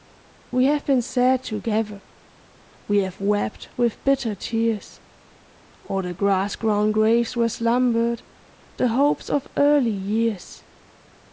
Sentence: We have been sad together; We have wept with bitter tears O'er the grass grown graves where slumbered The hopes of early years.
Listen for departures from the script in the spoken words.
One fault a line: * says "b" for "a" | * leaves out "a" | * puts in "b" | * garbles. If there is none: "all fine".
all fine